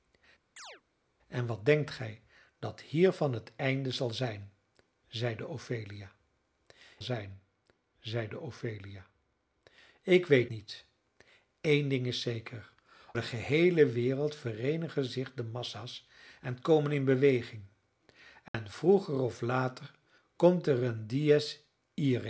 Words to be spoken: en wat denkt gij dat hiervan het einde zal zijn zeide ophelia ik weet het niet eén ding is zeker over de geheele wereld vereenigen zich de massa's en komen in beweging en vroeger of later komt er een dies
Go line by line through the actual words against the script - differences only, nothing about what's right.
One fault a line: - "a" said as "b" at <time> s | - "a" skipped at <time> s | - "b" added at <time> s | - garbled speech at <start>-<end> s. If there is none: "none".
- "zijn zeide ophelia" added at 7.0 s
- "het" skipped at 10.5 s
- "over" skipped at 12.7 s